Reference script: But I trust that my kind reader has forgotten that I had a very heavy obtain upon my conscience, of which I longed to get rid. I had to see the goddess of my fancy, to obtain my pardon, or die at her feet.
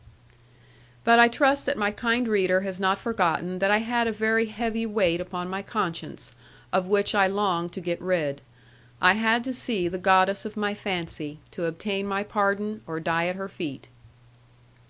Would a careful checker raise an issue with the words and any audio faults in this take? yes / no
yes